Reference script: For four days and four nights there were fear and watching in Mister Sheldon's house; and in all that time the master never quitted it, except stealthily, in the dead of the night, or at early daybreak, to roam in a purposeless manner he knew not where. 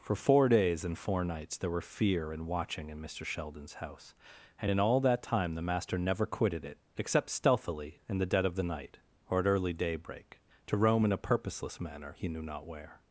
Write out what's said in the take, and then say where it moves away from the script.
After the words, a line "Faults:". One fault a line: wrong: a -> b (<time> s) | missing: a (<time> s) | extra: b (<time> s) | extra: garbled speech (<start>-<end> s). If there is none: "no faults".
For four days and four nights there were fear and watching in Mister Sheldon's house; and in all that time the master never quitted it, except stealthily, in the dead of the night, or at early daybreak, to roam in a purposeless manner he knew not where.
Faults:
no faults